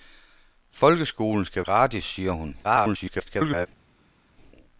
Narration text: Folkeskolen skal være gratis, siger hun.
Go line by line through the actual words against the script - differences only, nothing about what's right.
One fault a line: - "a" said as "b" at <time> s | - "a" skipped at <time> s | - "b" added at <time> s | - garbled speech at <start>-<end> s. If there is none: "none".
- "være" skipped at 1.6 s
- garbled speech at 2.6-3.7 s